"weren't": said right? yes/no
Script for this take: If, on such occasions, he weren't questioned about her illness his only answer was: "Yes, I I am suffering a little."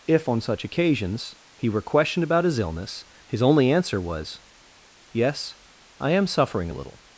no